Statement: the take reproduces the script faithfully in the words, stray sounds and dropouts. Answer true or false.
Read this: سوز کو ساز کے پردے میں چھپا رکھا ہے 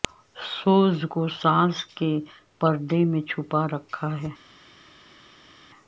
true